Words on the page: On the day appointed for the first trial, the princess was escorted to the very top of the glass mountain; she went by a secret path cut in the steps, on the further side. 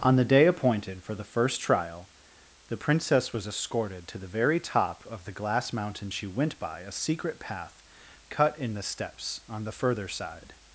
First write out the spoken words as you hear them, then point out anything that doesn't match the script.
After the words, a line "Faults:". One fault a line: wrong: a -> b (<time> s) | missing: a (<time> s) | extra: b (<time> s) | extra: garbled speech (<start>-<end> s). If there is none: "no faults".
On the day appointed for the first trial, the princess was escorted to the very top of the glass mountain; she went by a secret path cut in the steps, on the further side.
Faults:
no faults